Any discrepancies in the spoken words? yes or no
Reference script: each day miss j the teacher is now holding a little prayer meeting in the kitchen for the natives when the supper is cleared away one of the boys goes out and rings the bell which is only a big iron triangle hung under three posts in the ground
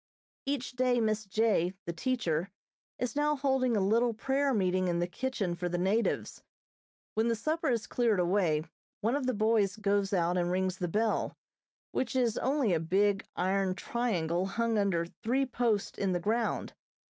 no